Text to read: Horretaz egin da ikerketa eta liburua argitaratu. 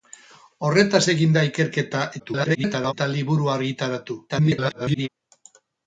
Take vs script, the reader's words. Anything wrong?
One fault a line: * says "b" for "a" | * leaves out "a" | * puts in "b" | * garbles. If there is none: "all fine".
* garbles
* garbles